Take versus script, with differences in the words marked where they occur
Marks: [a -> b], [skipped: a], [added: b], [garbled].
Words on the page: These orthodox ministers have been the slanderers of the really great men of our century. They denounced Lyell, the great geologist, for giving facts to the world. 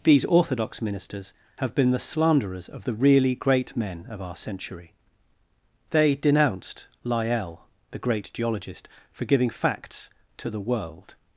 These orthodox ministers have been the slanderers of the really great men of our century. They denounced Lyell, the great geologist, for giving facts to the world.